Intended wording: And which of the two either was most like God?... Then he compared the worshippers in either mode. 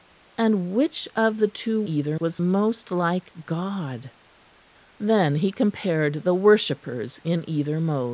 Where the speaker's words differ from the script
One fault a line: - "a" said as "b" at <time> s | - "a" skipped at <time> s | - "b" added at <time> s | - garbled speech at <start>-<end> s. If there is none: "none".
none